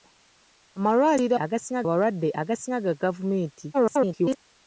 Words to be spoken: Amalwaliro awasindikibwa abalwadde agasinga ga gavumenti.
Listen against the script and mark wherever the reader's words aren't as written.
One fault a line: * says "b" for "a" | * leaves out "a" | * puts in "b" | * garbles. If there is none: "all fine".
* says "agasinga" for "awasindikibwa"
* garbles